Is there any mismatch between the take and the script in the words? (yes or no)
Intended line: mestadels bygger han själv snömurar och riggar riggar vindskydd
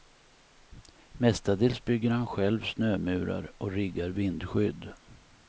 yes